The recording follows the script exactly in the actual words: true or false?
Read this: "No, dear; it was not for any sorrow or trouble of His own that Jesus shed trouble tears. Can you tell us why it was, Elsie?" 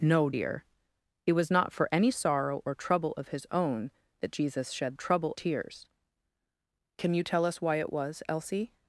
true